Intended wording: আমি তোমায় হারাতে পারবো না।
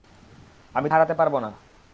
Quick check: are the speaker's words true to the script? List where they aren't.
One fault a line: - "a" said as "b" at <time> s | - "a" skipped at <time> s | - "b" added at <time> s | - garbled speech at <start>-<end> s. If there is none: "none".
- "তোমায়" skipped at 0.9 s